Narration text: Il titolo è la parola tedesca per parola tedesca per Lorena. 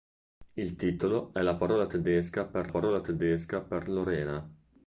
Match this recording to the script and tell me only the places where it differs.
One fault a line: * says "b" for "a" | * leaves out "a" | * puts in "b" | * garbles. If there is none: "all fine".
all fine